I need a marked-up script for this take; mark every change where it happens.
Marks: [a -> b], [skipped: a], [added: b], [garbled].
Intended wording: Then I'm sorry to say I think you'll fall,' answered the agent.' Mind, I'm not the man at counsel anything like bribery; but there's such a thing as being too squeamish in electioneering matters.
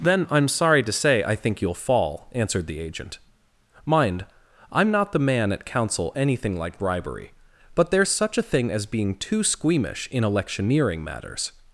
Then I'm sorry to say I think you'll fall,' answered the agent.' Mind, I'm not the man at counsel anything like bribery; but there's such a thing as being too squeamish in electioneering matters.